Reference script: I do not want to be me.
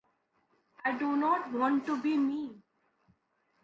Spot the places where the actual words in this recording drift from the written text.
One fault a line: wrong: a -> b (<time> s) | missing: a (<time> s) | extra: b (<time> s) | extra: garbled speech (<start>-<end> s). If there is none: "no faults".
no faults